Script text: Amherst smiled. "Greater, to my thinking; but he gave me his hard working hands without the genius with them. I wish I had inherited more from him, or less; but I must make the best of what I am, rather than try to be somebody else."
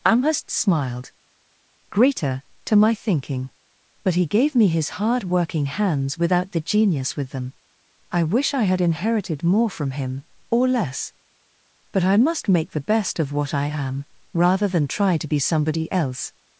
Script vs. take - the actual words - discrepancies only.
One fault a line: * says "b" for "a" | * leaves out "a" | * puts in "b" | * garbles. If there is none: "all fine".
all fine